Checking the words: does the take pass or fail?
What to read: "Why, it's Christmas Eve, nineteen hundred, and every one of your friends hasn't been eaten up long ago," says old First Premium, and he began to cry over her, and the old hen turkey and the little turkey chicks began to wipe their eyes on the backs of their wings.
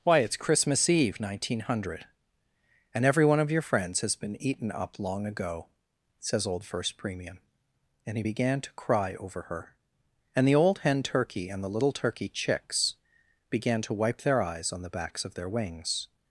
fail